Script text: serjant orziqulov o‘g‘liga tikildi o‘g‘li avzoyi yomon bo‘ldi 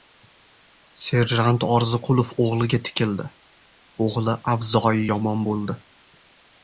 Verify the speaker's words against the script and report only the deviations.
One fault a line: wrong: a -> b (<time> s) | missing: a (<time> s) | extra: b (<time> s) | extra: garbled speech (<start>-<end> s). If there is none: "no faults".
no faults